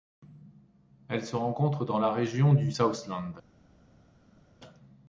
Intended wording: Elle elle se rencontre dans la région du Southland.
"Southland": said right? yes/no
yes